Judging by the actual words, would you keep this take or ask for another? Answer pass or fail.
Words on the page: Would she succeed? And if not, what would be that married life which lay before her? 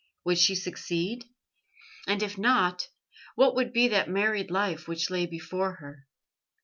pass